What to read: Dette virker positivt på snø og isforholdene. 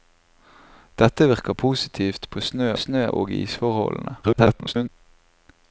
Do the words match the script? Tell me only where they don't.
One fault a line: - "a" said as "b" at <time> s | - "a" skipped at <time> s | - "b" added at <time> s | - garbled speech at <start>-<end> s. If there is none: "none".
- "snø" added at 2.8 s
- garbled speech at 4.2-4.9 s